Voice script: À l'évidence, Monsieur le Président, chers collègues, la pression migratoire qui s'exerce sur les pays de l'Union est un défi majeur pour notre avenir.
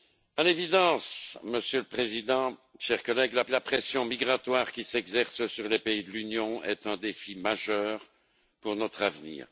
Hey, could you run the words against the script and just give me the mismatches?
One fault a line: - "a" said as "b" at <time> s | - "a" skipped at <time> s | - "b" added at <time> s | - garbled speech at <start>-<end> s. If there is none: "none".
- "la" added at 3.5 s